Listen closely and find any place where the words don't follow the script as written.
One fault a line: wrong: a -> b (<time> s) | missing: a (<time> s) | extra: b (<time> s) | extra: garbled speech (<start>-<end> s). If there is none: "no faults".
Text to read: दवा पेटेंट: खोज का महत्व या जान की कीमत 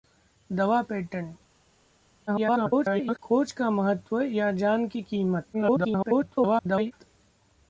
extra: garbled speech (2.3-3.2 s)
extra: garbled speech (5.5-6.9 s)